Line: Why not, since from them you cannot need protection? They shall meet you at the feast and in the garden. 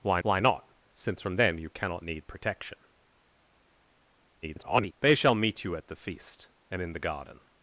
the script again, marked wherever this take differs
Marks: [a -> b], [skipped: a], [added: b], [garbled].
Why [added: why] not, since from them you cannot need protection? [garbled] They shall meet you at the feast and in the garden.